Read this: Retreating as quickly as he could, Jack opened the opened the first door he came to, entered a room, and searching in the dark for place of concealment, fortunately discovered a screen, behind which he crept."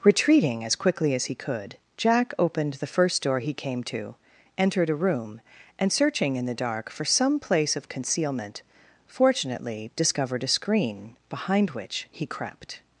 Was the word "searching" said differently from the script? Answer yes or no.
no